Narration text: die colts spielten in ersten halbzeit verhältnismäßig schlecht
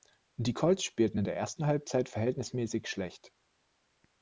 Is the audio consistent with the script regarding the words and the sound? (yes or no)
no